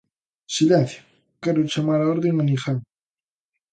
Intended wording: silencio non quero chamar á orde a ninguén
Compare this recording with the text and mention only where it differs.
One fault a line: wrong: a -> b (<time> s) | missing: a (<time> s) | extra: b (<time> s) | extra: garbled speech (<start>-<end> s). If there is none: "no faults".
missing: non (1.0 s)